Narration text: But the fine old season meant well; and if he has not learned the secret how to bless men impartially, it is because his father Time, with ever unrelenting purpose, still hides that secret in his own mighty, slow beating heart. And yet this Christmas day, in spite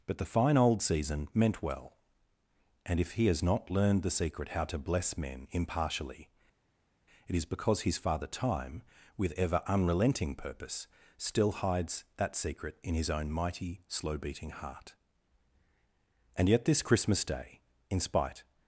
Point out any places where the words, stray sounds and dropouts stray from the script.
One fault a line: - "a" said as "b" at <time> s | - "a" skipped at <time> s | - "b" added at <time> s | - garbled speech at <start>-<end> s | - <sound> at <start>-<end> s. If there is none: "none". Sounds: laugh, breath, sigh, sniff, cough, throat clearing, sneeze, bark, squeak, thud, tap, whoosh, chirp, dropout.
none